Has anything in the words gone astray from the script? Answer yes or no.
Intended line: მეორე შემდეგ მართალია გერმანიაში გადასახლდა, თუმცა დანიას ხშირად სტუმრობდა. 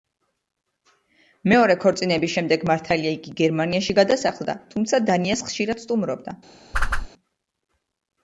yes